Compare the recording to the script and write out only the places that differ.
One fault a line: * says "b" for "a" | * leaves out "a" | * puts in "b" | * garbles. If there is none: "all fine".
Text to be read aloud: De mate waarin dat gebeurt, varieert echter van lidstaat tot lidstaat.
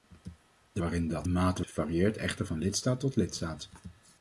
* leaves out "mate"
* says "mate" for "gebeurt"